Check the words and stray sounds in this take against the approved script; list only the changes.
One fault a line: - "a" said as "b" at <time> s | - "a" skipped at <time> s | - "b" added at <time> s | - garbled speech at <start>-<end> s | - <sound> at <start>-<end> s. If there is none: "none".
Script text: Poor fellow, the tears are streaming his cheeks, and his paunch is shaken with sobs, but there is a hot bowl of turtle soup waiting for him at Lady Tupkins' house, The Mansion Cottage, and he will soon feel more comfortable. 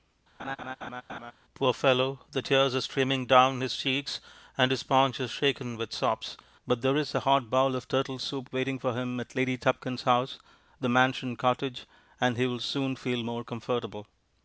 - laugh at 0.4-1.3 s
- "down" added at 3.3 s